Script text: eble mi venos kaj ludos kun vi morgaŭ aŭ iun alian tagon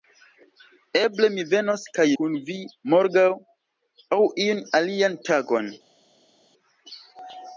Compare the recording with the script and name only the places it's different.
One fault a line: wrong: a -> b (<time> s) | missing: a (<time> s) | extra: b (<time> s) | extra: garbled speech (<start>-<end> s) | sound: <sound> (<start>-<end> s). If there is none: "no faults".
missing: ludos (2.0 s)